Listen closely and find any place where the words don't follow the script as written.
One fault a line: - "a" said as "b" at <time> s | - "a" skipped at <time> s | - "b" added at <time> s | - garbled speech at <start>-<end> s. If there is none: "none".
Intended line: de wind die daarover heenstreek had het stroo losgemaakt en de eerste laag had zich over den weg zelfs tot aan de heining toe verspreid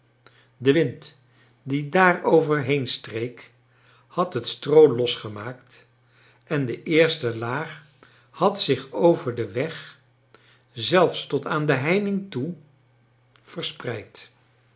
none